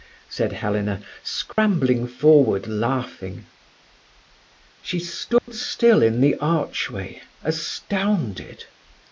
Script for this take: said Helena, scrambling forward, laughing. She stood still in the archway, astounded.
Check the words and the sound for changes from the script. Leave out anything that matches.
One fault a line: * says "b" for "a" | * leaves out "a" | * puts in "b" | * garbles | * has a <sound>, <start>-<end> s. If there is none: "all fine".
* has a dropout, 1.5-1.6 s
* has a dropout, 5.4-5.5 s